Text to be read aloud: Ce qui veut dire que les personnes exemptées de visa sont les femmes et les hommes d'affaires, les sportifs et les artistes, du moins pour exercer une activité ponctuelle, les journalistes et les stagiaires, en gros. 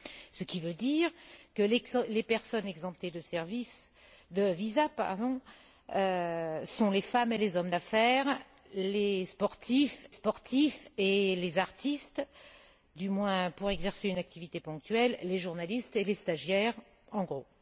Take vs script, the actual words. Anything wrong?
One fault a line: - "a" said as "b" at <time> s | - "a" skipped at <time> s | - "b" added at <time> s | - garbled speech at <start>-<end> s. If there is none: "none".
- "sportifs" added at 10.1 s